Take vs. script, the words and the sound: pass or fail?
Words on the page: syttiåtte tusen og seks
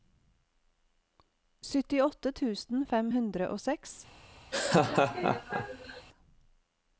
fail